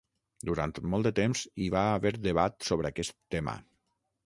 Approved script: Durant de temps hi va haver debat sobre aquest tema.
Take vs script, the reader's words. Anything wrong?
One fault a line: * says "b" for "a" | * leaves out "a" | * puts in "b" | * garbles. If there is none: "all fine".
* puts in "molt"